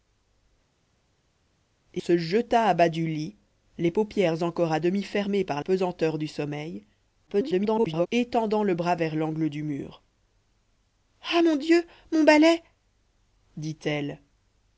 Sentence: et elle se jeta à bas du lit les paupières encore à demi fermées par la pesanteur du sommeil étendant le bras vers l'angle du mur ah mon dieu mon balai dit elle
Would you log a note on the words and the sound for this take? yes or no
yes